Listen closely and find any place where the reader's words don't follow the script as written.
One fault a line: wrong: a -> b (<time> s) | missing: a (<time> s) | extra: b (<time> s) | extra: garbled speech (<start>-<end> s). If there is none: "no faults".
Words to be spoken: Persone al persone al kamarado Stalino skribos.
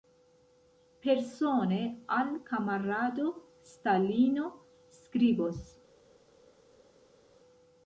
missing: persone al (2.4 s)